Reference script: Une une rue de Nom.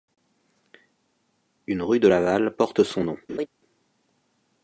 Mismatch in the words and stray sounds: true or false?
true